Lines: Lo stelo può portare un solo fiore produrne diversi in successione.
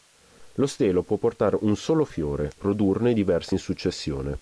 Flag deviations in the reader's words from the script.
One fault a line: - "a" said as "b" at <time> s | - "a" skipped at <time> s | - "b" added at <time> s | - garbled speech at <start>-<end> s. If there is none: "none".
none